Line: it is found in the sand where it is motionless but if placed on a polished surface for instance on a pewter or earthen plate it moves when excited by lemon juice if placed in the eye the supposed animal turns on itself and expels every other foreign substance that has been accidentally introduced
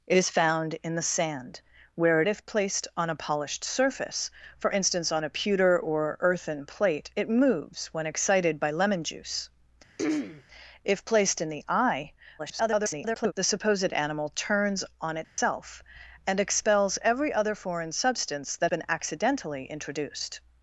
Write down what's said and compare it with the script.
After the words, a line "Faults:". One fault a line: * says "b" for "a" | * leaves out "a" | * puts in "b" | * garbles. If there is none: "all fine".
it is found in the sand where it if placed on a polished surface for instance on a pewter or earthen plate it moves when excited by lemon juice if placed in the eye [garbled] the supposed animal turns on itself and expels every other foreign substance that been accidentally introduced
Faults:
* leaves out "is motionless but"
* garbles
* leaves out "has"